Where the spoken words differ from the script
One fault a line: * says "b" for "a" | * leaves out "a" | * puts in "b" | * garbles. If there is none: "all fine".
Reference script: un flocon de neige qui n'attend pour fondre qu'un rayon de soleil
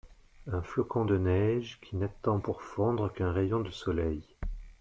all fine